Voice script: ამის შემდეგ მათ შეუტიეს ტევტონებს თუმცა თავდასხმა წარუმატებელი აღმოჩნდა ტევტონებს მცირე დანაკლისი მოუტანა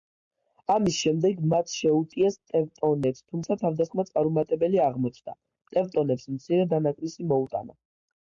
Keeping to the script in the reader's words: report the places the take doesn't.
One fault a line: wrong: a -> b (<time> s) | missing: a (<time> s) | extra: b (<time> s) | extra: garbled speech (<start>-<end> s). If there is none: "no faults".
no faults